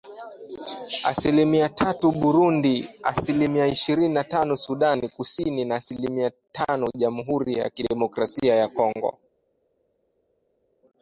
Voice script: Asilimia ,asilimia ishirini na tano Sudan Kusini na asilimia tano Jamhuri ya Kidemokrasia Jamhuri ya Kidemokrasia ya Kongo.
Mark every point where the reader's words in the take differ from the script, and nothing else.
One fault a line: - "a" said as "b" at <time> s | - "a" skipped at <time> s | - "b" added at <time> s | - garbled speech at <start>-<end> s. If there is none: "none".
- "tatu Burundi" added at 1.7 s
- "Jamhuri ya Kidemokrasia" skipped at 8.6 s